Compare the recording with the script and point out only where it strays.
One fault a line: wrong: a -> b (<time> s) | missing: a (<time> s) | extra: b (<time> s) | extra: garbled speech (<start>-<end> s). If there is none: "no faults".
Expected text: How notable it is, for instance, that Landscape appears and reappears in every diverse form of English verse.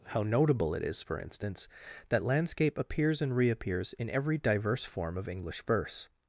no faults